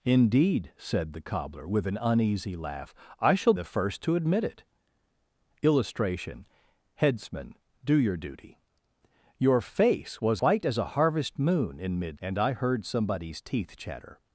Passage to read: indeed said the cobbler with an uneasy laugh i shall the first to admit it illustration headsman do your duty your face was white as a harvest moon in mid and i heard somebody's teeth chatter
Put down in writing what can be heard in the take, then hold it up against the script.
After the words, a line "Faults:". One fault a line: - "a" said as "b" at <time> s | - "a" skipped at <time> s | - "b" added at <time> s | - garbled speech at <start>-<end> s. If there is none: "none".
indeed said the cobbler with an uneasy laugh i shall the first to admit it illustration headsman do your duty your face was white as a harvest moon in mid and i heard somebody's teeth chatter
Faults:
none